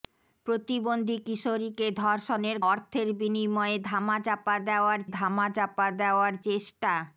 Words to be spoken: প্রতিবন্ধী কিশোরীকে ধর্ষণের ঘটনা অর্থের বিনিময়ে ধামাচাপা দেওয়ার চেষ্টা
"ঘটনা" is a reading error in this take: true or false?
true